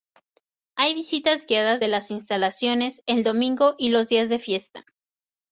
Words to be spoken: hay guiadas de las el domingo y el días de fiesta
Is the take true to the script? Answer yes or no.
no